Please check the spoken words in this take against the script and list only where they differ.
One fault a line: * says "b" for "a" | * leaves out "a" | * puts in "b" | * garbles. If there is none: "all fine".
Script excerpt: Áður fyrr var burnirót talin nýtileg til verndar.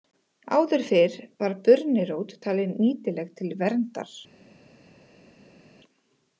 all fine